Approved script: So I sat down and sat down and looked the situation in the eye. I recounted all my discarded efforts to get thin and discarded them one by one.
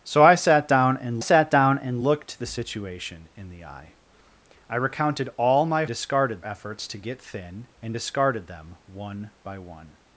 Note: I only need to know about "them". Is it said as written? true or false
true